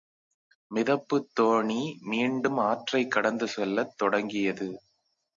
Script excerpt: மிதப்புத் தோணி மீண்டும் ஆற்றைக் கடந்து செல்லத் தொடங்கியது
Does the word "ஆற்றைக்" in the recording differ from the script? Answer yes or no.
no